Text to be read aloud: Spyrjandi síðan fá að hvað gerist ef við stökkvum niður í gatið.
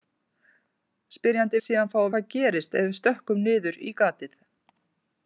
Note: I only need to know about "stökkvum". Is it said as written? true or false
true